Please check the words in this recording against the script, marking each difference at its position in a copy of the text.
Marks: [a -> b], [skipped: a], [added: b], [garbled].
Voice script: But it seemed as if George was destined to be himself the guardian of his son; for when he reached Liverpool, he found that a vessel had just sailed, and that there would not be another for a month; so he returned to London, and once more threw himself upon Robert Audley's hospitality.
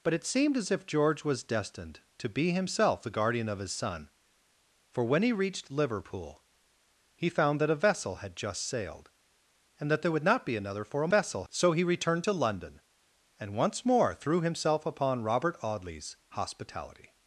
But it seemed as if George was destined to be himself the guardian of his son; for when he reached Liverpool, he found that a vessel had just sailed, and that there would not be another for a [month; -> vessel] so he returned to London, and once more threw himself upon Robert Audley's hospitality.